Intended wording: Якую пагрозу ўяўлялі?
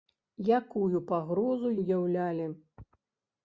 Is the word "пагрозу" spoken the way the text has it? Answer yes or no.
yes